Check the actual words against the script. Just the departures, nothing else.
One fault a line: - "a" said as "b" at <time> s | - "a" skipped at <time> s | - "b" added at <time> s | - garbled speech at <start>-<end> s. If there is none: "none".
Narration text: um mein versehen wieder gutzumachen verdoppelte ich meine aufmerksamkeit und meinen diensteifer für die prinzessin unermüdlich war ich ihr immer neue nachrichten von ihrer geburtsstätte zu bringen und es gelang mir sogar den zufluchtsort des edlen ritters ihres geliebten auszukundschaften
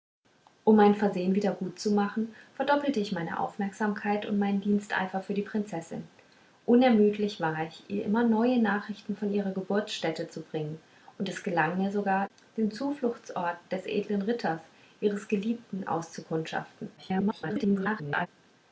- garbled speech at 17.0-18.3 s